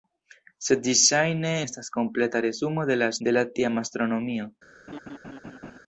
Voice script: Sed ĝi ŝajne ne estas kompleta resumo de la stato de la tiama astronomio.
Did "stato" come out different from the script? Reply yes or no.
yes